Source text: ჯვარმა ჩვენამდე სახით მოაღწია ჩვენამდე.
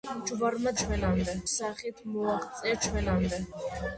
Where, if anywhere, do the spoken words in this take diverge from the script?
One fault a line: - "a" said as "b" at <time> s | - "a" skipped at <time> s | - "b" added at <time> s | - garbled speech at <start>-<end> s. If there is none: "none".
none